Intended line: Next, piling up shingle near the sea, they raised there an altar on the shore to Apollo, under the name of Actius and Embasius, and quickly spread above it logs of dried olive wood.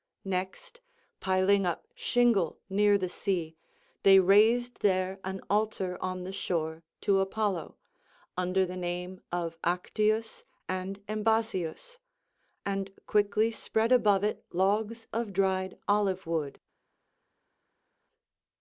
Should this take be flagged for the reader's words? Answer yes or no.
no